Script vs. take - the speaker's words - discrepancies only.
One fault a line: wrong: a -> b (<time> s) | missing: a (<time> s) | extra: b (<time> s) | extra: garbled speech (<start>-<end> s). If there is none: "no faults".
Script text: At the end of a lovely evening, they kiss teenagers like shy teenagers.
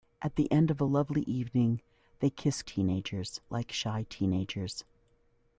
no faults